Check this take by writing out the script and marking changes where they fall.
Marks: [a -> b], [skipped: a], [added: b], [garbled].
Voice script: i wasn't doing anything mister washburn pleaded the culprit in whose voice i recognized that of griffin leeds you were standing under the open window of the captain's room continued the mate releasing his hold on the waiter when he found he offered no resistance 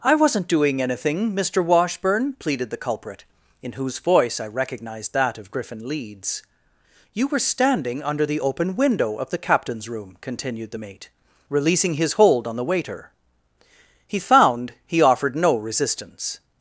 i wasn't doing anything mister washburn pleaded the culprit in whose voice i recognized that of griffin leeds you were standing under the open window of the captain's room continued the mate releasing his hold on the waiter [skipped: when] he found he offered no resistance